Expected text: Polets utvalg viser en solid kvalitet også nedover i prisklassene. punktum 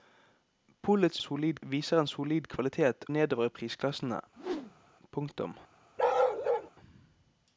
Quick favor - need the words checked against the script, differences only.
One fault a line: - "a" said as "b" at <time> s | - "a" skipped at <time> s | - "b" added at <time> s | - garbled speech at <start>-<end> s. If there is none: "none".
- "utvalg" said as "solid" at 1.2 s
- "også" skipped at 3.1 s